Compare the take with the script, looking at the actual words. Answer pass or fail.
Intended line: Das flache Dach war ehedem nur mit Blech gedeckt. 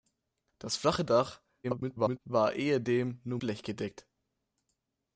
fail